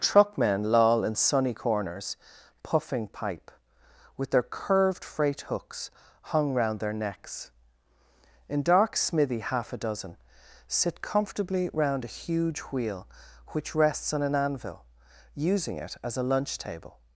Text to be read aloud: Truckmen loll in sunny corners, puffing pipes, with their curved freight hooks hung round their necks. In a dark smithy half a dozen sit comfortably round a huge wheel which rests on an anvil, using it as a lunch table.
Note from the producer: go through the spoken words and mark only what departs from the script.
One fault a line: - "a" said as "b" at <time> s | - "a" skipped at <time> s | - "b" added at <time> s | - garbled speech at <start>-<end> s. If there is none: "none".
- "pipes" said as "pipe" at 3.1 s
- "a" skipped at 8.6 s